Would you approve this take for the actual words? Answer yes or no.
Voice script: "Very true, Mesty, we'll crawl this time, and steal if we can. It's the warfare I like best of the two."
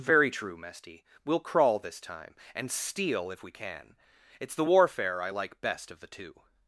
yes